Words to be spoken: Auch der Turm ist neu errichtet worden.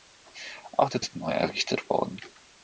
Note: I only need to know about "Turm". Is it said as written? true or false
false